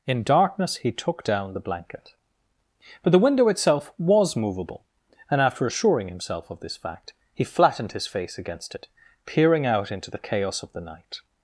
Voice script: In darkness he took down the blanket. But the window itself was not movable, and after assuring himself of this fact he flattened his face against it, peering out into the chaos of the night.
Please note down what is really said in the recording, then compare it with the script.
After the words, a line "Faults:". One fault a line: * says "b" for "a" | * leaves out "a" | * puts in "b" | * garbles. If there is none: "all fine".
In darkness he took down the blanket. But the window itself was movable, and after assuring himself of this fact he flattened his face against it, peering out into the chaos of the night.
Faults:
* leaves out "not"